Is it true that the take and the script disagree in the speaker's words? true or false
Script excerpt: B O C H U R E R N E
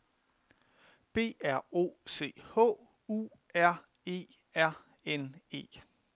true